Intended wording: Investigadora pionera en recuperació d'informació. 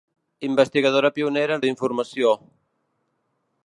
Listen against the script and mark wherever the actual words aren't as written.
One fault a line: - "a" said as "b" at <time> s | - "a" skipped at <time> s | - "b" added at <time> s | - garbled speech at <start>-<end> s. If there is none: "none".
- "recuperació" skipped at 1.6 s